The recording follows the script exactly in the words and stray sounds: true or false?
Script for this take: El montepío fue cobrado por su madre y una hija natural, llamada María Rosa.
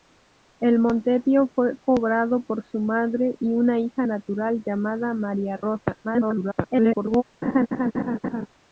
false